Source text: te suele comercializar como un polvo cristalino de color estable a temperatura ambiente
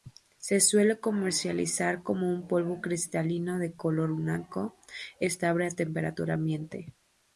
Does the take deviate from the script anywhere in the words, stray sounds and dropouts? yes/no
yes